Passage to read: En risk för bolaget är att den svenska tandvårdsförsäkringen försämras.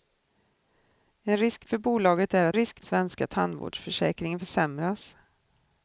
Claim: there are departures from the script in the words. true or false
true